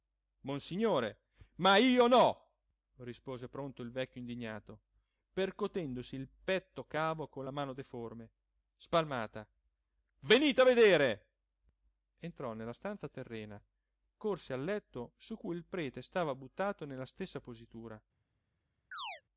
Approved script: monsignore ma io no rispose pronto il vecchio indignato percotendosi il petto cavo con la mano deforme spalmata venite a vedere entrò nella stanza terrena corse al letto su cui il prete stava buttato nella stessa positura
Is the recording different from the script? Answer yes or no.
no